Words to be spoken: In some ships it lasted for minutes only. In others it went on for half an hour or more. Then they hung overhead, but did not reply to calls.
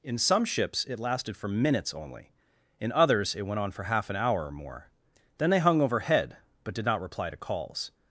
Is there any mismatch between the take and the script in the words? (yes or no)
no